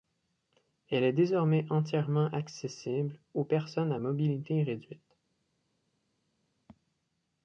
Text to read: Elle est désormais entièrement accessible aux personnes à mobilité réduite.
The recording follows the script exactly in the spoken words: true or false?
true